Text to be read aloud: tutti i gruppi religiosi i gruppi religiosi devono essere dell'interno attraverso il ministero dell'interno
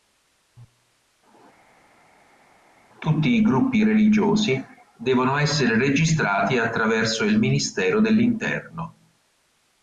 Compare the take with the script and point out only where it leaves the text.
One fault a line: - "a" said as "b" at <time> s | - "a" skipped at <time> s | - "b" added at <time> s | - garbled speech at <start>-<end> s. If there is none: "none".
- "i gruppi religiosi" skipped at 4.6 s
- "dell'interno" said as "registrati" at 5.8 s